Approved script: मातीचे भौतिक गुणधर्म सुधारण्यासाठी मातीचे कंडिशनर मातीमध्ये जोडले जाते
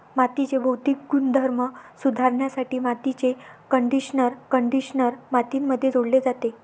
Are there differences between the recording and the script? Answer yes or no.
yes